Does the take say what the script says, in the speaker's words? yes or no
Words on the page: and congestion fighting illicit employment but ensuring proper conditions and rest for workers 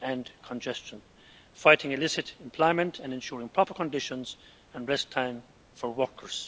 no